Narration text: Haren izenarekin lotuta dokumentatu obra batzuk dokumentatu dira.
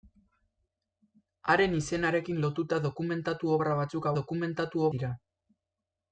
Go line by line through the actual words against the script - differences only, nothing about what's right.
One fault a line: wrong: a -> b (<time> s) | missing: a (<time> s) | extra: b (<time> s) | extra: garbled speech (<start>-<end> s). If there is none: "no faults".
no faults